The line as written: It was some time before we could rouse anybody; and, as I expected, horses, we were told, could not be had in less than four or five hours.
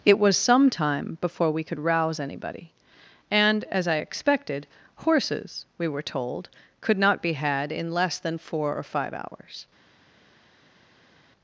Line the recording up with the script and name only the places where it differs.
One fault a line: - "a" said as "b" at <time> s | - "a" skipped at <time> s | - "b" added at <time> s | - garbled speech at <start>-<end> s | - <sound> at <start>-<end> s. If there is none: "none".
none